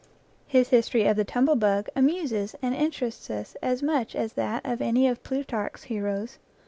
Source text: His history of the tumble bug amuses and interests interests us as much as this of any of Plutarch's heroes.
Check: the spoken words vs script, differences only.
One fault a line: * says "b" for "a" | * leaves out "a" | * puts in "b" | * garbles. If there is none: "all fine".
* leaves out "interests"
* says "that" for "this"